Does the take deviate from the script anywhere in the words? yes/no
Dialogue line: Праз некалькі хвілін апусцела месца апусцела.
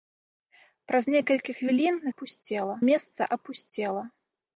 no